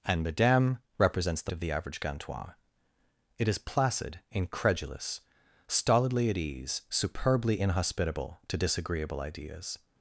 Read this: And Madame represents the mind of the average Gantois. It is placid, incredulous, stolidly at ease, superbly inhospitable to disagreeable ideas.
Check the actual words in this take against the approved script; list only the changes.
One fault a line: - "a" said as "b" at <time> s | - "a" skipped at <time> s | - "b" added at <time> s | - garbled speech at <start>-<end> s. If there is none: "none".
- "mind" skipped at 1.5 s